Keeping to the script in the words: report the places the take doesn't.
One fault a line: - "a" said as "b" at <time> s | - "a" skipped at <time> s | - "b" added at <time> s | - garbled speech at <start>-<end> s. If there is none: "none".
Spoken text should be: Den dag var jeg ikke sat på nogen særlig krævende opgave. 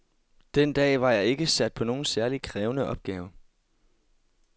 none